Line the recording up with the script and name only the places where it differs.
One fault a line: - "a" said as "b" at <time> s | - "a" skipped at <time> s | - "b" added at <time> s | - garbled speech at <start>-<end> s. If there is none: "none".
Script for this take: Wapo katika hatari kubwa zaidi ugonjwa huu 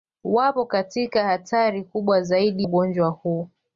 none